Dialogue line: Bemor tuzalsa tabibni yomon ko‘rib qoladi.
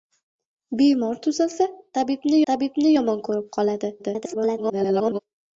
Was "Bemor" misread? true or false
false